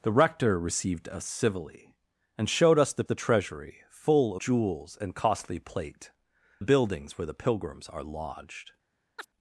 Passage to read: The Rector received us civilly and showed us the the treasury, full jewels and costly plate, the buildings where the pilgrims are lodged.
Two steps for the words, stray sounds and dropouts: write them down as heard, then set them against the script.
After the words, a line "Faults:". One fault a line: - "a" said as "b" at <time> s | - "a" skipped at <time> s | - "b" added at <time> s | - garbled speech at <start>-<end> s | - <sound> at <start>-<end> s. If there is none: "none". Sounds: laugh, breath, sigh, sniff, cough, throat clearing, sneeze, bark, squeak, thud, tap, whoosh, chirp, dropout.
The Rector received us civilly and showed us the the treasury, full jewels and costly plate, the buildings where the pilgrims are lodged.
Faults:
- chirp at 9.2-9.3 s